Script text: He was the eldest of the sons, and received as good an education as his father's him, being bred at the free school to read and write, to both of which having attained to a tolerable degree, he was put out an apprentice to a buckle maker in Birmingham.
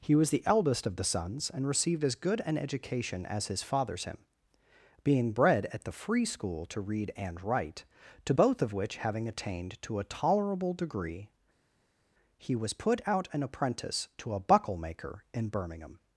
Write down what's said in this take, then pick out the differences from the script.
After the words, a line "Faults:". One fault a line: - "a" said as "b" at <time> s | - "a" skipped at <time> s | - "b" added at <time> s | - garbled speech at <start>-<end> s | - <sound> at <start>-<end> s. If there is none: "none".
He was the eldest of the sons, and received as good an education as his father's him, being bred at the free school to read and write, to both of which having attained to a tolerable degree, he was put out an apprentice to a buckle maker in Birmingham.
Faults:
none